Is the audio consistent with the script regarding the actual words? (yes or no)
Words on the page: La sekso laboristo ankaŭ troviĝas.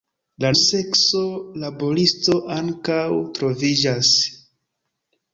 yes